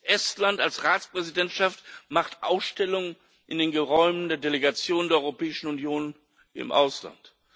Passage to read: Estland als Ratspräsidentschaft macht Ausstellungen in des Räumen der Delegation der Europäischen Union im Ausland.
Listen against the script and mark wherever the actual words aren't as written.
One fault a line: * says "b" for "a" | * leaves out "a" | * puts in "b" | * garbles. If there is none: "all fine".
* says "den" for "des"